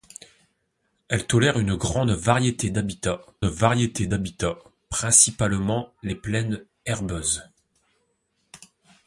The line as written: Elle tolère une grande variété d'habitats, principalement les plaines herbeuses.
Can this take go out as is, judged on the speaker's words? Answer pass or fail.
fail